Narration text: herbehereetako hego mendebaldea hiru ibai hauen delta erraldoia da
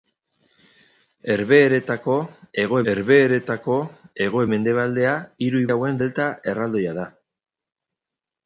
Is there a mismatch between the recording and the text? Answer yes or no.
yes